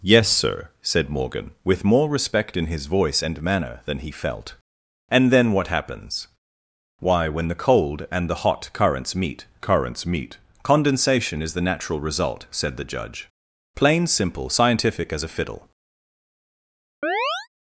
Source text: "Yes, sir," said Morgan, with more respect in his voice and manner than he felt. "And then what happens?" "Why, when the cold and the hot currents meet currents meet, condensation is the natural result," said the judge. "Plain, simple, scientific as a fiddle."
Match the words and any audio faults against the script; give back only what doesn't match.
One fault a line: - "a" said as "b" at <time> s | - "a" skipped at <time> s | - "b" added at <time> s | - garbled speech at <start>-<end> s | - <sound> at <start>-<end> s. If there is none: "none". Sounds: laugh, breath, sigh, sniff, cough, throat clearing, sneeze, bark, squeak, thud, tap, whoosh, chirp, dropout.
- chirp at 17.0-17.5 s